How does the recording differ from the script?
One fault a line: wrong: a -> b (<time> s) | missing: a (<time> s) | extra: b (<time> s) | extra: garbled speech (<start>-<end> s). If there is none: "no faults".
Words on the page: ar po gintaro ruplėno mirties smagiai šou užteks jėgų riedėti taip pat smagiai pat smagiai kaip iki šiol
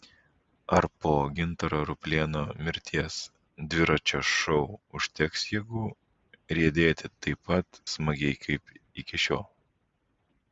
wrong: smagiai -> dviračio (3.7 s)
missing: pat smagiai (8.4 s)